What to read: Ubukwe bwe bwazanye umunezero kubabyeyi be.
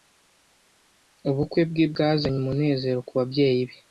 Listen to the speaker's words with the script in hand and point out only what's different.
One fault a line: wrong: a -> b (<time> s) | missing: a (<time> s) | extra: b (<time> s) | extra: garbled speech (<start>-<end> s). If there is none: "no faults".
no faults